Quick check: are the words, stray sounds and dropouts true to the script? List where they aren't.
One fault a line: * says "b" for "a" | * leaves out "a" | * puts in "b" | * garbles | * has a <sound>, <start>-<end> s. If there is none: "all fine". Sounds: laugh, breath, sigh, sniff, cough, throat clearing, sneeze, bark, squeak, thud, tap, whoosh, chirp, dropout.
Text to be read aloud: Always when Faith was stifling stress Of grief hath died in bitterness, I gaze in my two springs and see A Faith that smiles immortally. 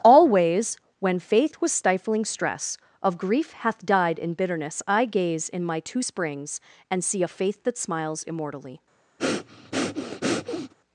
* has a breath, 9.2-10.7 s